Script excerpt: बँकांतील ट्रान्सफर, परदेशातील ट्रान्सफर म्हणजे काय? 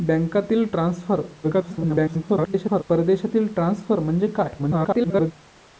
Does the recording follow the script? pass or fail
fail